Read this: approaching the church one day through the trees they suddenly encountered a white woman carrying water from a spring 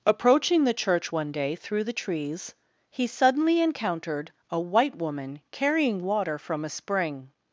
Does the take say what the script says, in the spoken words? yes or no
no